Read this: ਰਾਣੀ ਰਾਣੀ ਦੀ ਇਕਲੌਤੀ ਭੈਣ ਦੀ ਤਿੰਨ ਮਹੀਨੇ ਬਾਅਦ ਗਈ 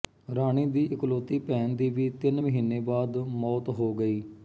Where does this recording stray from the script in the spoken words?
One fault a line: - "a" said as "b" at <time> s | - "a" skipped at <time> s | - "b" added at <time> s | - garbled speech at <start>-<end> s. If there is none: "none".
- "ਰਾਣੀ" skipped at 0.7 s
- "ਵੀ" added at 1.9 s
- "ਮੌਤ ਹੋ" added at 3.2 s